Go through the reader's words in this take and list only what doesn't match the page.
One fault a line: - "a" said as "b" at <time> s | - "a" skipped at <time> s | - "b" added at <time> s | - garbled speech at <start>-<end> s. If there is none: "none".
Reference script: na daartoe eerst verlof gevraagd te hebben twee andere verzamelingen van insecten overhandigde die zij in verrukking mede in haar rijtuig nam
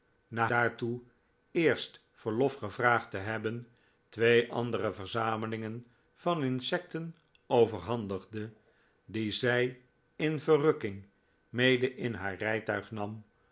none